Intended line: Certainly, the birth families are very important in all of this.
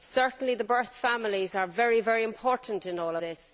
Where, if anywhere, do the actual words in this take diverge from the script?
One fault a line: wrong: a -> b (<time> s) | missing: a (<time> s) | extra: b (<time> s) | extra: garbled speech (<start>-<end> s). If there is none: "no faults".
missing: of (3.2 s)